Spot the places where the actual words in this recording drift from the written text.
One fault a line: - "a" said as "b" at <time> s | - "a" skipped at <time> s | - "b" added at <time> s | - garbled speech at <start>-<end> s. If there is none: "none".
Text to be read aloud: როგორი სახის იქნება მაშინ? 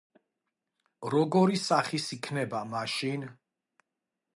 none